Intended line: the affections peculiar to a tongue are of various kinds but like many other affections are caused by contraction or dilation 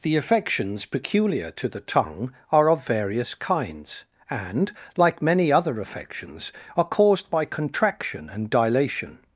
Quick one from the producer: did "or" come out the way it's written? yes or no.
no